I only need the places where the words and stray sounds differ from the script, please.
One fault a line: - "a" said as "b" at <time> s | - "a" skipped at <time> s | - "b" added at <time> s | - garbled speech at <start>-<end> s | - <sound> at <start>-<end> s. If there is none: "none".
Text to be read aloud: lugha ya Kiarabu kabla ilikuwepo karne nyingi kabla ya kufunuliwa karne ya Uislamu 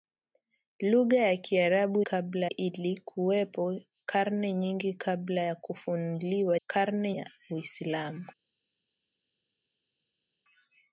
none